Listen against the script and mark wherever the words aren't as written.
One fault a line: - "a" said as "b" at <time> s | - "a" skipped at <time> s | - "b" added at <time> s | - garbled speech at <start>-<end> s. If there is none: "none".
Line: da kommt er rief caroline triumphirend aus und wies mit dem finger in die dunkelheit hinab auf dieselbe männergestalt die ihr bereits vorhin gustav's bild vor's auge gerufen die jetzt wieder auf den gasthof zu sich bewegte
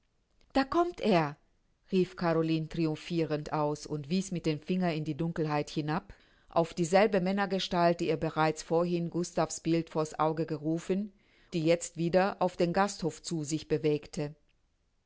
none